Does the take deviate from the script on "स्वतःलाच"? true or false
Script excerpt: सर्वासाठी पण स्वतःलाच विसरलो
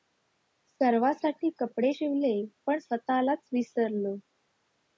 false